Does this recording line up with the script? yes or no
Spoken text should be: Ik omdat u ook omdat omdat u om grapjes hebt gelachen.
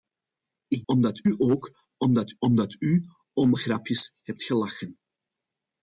yes